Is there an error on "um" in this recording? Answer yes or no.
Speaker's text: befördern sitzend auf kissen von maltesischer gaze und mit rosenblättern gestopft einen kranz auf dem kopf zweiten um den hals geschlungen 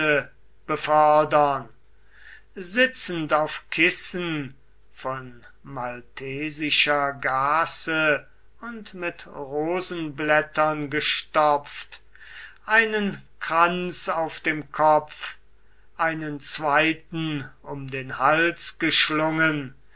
no